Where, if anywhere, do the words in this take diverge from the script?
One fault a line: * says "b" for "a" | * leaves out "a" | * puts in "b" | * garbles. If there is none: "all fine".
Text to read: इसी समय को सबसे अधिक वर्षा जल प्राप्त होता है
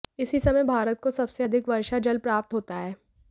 * puts in "भारत"